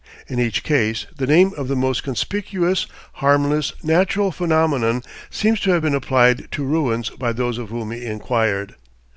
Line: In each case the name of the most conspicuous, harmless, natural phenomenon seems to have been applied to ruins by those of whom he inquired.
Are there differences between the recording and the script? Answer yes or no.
no